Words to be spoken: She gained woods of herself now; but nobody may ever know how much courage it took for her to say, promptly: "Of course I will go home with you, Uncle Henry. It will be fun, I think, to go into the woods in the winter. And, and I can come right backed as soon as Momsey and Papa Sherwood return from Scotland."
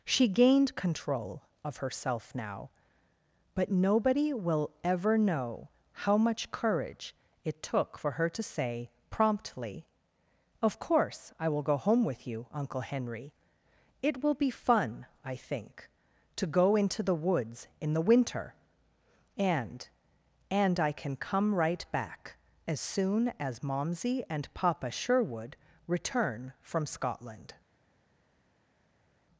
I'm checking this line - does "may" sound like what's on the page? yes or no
no